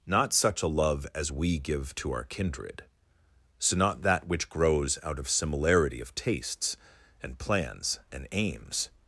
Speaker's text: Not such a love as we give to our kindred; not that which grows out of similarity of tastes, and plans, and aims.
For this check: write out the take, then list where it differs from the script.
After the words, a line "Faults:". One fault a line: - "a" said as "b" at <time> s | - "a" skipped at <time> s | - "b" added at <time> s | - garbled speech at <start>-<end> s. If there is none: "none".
Not such a love as we give to our kindred; so not that which grows out of similarity of tastes, and plans, and aims.
Faults:
- "so" added at 3.6 s